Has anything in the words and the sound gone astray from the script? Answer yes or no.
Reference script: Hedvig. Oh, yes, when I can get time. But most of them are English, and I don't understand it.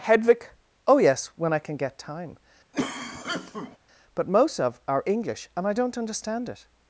yes